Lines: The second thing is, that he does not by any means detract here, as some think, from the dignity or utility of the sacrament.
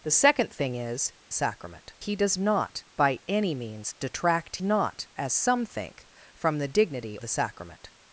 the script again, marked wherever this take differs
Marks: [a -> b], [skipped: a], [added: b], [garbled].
The second thing is, [that -> sacrament] he does not by any means detract [here, -> not] as some think, from the dignity [skipped: or utility of] the sacrament.